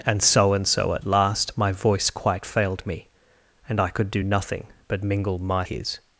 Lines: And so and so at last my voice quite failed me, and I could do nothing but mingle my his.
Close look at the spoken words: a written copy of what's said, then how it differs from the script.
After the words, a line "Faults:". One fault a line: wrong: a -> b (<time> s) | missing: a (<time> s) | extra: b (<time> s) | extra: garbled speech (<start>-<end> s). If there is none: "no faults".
And so and so at last my voice quite failed me, and I could do nothing but mingle my his.
Faults:
no faults